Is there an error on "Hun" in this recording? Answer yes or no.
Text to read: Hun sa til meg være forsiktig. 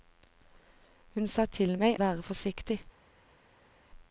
no